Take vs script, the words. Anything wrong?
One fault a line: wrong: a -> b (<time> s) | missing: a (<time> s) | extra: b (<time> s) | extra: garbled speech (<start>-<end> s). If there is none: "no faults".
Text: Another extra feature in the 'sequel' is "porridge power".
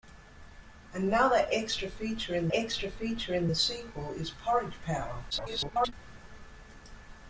extra: extra feature in (2.5 s)
extra: garbled speech (5.3-5.9 s)